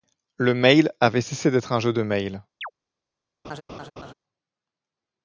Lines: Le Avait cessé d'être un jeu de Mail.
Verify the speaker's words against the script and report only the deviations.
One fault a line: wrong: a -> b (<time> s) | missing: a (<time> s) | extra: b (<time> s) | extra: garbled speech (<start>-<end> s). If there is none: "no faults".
extra: Mail (0.6 s)